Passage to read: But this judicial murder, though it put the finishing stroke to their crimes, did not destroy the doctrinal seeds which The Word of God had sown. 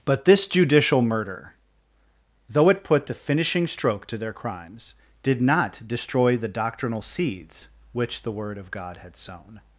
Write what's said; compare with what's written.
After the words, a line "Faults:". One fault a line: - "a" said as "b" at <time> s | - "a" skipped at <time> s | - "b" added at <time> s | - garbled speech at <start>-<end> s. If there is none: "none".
But this judicial murder, though it put the finishing stroke to their crimes, did not destroy the doctrinal seeds which The Word of God had sown.
Faults:
none